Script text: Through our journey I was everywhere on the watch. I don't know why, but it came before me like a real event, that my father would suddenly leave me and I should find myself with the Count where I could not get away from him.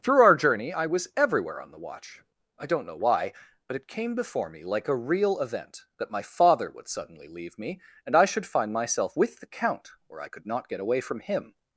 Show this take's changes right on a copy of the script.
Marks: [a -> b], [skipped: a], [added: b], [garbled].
Through our journey I was everywhere on the watch. I don't know why, but it came before me like a real event, that my father would suddenly leave me and I should find myself with the Count where I could not get away from him.